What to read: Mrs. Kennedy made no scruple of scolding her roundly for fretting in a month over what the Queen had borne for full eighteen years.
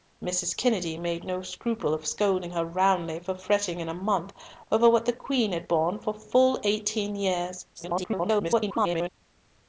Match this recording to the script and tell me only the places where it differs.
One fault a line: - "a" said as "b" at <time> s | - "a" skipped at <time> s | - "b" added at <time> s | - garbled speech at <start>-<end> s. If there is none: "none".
- garbled speech at 7.7-9.1 s